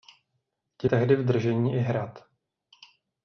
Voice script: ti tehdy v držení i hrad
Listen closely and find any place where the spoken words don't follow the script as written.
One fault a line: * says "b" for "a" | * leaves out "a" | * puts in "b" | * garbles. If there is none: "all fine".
all fine